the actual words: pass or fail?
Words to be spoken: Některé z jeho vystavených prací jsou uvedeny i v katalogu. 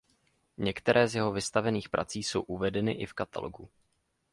pass